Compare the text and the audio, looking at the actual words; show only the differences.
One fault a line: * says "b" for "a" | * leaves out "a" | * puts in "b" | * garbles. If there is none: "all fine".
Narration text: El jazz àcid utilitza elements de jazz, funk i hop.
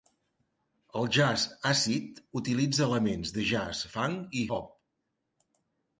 all fine